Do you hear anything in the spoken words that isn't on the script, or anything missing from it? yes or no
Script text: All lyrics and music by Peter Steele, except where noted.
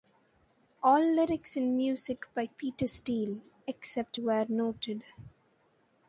no